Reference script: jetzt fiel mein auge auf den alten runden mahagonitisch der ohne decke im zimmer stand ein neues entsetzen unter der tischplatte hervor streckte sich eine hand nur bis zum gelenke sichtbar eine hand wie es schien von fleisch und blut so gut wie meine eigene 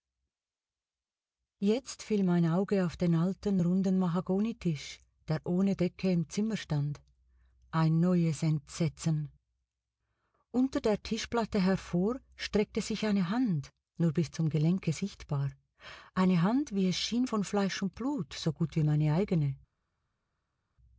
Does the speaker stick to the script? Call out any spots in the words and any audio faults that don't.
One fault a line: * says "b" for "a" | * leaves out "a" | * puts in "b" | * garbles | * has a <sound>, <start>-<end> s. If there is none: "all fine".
all fine